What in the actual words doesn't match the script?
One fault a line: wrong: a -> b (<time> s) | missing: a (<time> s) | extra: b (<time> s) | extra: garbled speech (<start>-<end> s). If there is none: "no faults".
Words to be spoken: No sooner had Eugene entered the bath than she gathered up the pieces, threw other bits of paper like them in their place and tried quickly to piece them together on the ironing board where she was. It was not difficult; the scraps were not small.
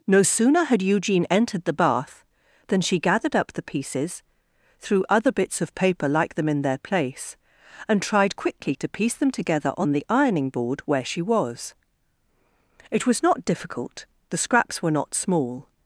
no faults